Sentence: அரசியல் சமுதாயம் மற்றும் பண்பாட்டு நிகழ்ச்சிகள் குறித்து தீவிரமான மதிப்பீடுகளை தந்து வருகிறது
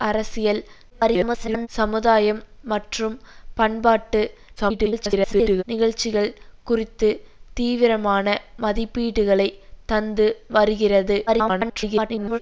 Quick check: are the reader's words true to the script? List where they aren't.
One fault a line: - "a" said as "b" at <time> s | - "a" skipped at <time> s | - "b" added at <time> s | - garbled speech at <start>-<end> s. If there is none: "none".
- garbled speech at 0.9-1.7 s
- garbled speech at 4.6-5.6 s
- garbled speech at 11.3-12.4 s